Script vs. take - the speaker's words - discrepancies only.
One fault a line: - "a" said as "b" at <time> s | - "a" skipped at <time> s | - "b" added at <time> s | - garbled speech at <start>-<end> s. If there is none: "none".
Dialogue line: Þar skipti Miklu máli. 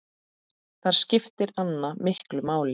- "Anna" added at 1.6 s